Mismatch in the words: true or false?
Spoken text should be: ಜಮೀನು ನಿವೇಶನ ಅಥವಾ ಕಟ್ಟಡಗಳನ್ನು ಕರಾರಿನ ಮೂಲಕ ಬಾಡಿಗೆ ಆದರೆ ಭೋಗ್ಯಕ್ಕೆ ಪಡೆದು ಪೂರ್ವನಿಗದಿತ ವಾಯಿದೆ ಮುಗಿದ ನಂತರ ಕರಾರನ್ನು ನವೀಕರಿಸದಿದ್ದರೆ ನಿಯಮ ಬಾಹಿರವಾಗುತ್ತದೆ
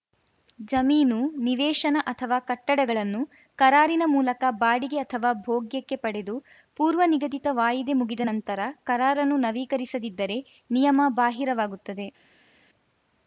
true